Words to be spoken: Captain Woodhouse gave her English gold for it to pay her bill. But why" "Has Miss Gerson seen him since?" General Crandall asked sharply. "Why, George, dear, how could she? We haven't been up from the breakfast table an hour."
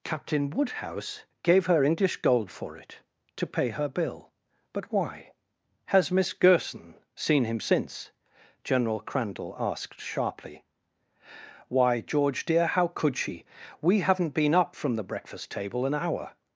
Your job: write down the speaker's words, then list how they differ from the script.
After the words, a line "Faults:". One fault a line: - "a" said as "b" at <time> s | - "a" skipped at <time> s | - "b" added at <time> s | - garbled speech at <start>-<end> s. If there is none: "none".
Captain Woodhouse gave her English gold for it to pay her bill. But why" "Has Miss Gerson seen him since?" General Crandall asked sharply. "Why, George, dear, how could she? We haven't been up from the breakfast table an hour."
Faults:
none